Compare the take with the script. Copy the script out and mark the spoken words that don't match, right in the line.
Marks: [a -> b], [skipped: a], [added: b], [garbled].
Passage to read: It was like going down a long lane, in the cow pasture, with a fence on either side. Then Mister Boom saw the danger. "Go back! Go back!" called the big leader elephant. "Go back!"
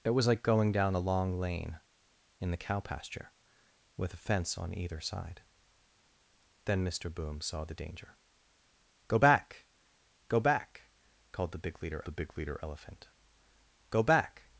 It was like going down a long lane, in the cow pasture, with a fence on either side. Then Mister Boom saw the danger. "Go back! Go back!" called the big leader [added: the big leader] elephant. "Go back!"